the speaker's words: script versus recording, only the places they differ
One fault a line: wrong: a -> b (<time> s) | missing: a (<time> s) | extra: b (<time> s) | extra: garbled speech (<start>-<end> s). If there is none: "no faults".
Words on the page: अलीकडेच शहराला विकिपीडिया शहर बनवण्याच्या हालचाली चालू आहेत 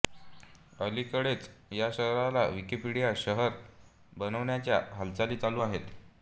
extra: या (1.7 s)